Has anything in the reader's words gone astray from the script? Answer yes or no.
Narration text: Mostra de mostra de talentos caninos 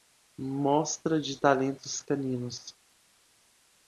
yes